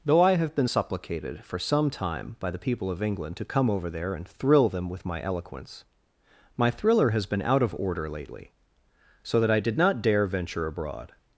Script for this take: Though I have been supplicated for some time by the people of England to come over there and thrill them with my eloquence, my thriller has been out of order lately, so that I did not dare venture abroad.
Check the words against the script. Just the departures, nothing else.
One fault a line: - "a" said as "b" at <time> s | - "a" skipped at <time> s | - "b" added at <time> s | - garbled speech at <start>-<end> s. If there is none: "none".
none